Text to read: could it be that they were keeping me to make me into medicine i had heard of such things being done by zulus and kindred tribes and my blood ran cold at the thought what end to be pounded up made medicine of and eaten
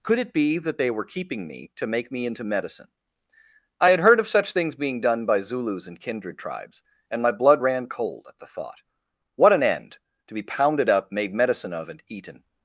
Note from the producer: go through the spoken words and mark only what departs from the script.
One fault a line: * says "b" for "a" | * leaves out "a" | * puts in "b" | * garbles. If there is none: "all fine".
* puts in "an"